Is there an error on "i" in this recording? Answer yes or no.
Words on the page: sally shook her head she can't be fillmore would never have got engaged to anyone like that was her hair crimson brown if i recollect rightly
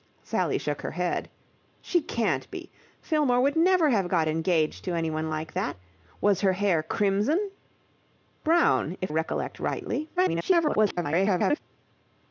yes